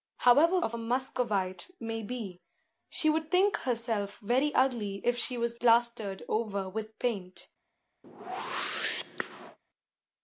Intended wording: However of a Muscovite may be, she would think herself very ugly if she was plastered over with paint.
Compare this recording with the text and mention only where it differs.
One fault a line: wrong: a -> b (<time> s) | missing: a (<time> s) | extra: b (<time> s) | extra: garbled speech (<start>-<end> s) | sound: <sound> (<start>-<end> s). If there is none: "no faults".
sound: whoosh (8.0-9.6 s)